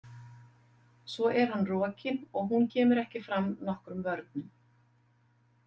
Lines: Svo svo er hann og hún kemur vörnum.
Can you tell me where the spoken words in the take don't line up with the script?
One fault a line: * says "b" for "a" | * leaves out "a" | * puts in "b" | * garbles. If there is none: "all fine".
* leaves out "svo"
* puts in "rokinn"
* puts in "ekki fram nokkrum"